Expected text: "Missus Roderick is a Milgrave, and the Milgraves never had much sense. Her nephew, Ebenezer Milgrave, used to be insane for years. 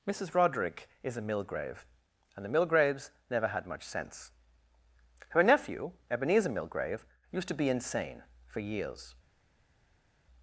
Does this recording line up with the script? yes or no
yes